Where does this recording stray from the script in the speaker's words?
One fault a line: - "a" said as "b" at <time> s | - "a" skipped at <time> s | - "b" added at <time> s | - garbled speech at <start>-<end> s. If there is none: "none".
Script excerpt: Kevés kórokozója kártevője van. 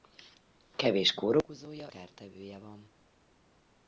none